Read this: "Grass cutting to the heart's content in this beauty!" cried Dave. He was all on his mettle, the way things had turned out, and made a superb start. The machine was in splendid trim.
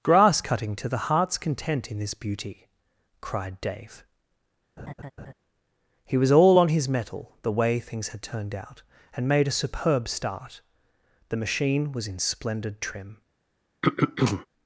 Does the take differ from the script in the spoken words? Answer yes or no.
no